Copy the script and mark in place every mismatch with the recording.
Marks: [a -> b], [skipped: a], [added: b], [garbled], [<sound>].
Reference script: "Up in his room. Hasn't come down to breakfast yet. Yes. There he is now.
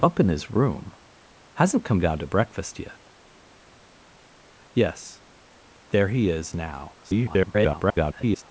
"Up in his room. Hasn't come down to breakfast yet. Yes. There he is now. [garbled]